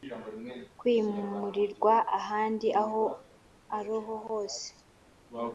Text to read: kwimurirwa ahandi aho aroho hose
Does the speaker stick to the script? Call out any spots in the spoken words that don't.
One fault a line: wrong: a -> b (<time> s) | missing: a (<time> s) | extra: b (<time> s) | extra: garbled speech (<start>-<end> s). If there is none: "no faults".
no faults